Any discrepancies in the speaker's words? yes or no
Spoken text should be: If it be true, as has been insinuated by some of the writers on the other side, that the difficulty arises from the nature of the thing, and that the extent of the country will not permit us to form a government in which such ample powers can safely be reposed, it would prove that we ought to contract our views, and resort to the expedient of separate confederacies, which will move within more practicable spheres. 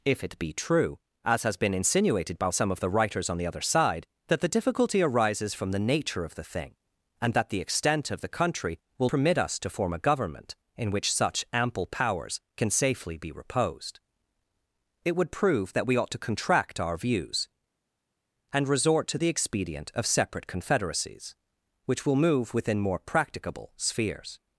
yes